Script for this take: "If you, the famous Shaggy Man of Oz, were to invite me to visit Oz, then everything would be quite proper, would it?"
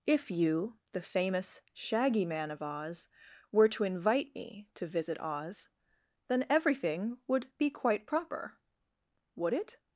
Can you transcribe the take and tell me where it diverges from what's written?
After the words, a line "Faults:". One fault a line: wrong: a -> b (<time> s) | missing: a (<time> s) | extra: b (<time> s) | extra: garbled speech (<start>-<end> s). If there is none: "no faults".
"If you, the famous Shaggy Man of Oz, were to invite me to visit Oz, then everything would be quite proper, would it?"
Faults:
no faults